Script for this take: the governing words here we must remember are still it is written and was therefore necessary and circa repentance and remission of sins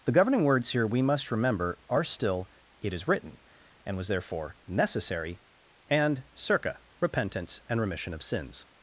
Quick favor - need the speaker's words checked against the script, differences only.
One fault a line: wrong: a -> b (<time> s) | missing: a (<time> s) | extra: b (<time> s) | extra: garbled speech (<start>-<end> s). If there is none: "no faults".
no faults